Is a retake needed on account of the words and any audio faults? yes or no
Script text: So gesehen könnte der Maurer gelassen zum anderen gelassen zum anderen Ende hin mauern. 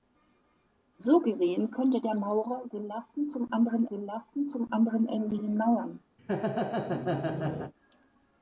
yes